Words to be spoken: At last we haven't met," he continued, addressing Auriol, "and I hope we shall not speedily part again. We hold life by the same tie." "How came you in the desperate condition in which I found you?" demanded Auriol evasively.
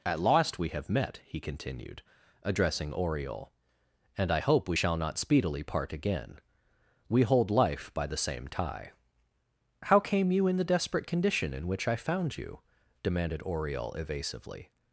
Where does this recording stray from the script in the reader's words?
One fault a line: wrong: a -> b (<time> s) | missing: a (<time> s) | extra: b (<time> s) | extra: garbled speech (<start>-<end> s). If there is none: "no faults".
wrong: haven't -> have (0.7 s)